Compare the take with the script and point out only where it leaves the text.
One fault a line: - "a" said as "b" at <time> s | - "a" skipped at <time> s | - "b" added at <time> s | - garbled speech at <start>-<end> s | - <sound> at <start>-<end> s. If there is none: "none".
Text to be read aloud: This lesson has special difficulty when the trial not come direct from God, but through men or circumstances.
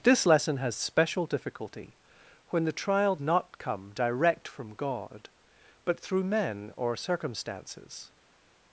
none